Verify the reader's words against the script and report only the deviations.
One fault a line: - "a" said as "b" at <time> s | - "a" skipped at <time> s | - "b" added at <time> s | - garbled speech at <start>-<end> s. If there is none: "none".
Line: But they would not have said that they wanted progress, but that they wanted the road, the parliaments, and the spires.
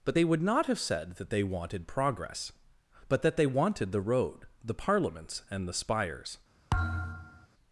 none